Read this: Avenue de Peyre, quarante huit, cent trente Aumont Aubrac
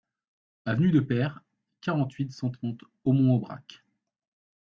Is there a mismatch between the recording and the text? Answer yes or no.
no